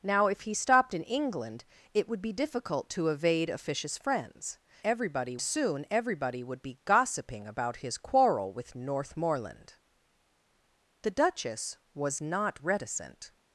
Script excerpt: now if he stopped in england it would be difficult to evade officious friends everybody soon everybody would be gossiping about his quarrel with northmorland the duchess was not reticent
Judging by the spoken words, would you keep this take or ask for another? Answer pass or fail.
pass